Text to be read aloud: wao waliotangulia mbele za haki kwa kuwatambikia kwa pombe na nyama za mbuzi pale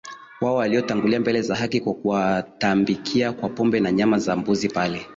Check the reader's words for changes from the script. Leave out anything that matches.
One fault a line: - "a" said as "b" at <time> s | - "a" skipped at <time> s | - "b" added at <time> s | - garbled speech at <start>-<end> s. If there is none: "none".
none